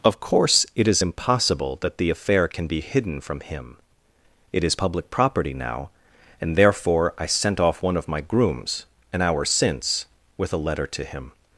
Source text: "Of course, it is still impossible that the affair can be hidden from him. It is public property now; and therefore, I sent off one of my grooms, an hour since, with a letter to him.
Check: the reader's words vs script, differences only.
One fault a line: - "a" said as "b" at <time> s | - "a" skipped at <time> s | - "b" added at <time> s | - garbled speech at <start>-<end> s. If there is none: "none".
- "still" skipped at 1.0 s